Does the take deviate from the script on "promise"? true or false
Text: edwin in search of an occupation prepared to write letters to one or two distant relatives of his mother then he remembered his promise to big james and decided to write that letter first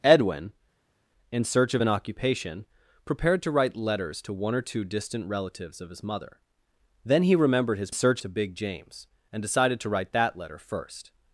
true